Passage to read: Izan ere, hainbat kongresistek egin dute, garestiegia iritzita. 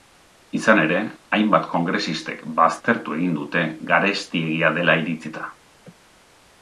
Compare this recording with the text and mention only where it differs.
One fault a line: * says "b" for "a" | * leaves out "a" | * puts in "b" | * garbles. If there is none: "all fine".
* puts in "baztertu"
* puts in "dela"